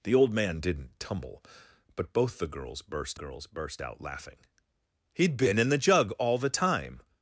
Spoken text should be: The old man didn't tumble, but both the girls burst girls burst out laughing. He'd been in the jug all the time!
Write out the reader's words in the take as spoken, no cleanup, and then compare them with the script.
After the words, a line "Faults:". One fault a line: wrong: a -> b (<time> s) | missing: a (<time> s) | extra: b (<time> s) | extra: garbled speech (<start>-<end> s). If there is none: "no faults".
The old man didn't tumble, but both the girls burst girls burst out laughing. He'd been in the jug all the time!
Faults:
no faults